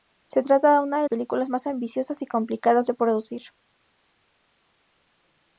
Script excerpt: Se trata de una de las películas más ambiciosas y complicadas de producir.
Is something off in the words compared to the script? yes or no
yes